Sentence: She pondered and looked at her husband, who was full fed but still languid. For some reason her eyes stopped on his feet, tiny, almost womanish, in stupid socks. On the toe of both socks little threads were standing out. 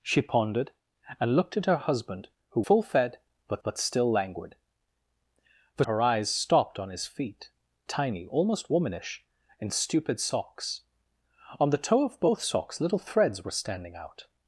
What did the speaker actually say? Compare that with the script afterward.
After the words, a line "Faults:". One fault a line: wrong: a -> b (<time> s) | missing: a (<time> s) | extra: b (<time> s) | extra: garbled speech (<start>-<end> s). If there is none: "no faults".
She pondered and looked at her husband, who full fed but but still languid. For her eyes stopped on his feet, tiny, almost womanish, in stupid socks. On the toe of both socks little threads were standing out.
Faults:
missing: was (2.6 s)
extra: but (3.6 s)
missing: some reason (5.8 s)